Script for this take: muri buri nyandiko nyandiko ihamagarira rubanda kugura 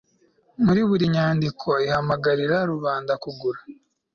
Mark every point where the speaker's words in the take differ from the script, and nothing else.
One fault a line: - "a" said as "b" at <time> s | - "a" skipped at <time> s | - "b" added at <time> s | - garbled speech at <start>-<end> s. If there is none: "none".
- "nyandiko" skipped at 1.7 s